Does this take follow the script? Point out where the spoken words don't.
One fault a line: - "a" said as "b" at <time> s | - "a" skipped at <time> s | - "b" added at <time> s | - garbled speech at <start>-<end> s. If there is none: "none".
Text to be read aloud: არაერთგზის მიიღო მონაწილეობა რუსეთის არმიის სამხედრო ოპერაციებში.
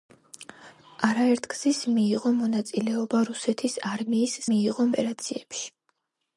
- "სამხედრო" said as "მიიღო" at 4.5 s